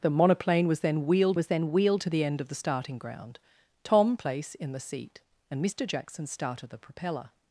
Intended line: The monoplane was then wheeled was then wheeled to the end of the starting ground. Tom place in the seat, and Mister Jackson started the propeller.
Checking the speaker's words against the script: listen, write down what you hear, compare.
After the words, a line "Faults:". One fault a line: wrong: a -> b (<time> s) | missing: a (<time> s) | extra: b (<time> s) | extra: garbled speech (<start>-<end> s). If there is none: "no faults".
The monoplane was then wheeled was then wheeled to the end of the starting ground. Tom place in the seat, and Mister Jackson started the propeller.
Faults:
no faults